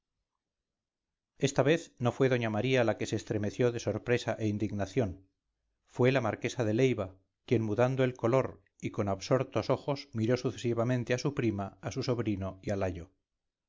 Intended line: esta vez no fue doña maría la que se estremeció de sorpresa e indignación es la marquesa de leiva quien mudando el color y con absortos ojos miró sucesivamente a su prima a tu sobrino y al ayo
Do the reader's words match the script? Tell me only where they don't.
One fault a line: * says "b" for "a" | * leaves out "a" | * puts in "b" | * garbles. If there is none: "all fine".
* says "fue" for "es"
* says "su" for "tu"